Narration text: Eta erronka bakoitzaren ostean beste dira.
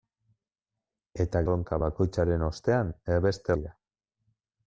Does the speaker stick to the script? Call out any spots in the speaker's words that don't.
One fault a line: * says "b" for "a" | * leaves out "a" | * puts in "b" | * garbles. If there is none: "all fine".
all fine